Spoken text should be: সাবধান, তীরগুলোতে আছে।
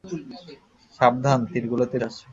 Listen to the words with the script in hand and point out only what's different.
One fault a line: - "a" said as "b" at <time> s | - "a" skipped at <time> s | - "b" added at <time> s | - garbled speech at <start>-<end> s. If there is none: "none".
none